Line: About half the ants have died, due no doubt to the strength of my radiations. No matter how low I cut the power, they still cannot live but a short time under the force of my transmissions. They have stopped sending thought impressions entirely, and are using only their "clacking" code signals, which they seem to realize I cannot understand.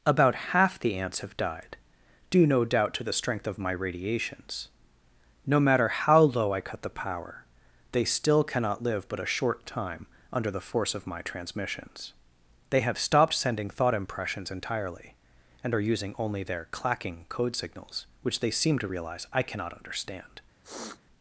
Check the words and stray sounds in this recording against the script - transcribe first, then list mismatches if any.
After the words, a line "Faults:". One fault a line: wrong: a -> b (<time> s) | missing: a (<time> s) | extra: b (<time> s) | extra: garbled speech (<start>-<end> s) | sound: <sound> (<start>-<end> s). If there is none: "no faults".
About half the ants have died, due no doubt to the strength of my radiations. No matter how low I cut the power, they still cannot live but a short time under the force of my transmissions. They have stopped sending thought impressions entirely, and are using only their "clacking" code signals, which they seem to realize I cannot understand.
Faults:
sound: sniff (20.6-21.0 s)